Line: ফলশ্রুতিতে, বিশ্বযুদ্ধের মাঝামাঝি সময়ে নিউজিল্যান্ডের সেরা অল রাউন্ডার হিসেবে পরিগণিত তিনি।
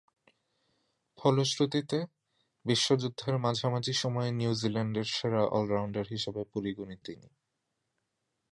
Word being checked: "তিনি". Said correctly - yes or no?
yes